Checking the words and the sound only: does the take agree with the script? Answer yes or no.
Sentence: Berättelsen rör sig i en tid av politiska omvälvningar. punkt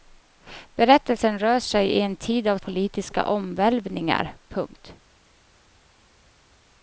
yes